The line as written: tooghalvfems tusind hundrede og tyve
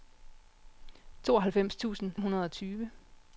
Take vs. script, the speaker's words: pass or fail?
pass